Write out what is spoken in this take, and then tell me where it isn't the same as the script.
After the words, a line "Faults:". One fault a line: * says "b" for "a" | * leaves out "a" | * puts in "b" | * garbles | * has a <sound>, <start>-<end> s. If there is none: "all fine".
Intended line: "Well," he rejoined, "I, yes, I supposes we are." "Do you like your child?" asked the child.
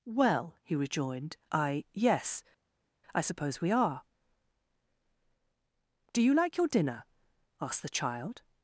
"Well," he rejoined, "I, yes, I suppose we are." "Do you like your dinner?" asked the child.
Faults:
* says "suppose" for "supposes"
* says "dinner" for "child"